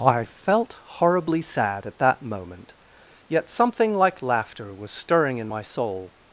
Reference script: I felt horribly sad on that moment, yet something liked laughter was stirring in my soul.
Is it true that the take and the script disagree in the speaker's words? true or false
true